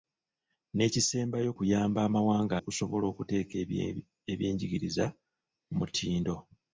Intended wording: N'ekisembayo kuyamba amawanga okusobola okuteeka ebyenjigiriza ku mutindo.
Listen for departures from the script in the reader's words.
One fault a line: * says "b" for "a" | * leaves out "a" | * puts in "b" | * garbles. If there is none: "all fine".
all fine